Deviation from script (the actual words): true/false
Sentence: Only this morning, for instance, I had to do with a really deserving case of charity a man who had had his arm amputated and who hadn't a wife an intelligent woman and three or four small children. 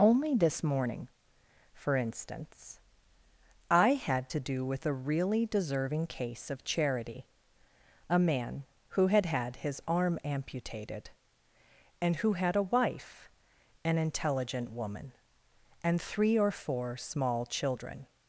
true